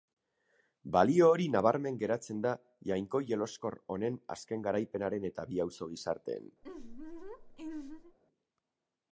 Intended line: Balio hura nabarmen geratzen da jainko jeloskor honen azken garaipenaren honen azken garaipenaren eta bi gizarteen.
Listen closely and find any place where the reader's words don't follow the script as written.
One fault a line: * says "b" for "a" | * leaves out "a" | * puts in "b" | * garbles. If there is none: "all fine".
* says "hori" for "hura"
* leaves out "honen azken garaipenaren"
* puts in "auzo"